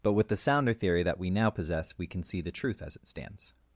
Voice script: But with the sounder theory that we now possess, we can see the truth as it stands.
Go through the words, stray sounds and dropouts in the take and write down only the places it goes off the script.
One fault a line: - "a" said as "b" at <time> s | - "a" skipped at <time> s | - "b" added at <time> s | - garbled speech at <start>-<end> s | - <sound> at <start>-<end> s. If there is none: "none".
none